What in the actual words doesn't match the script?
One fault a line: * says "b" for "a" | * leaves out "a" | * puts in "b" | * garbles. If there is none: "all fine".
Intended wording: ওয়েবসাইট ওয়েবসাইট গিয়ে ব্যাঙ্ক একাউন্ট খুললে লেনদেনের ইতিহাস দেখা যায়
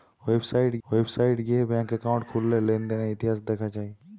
all fine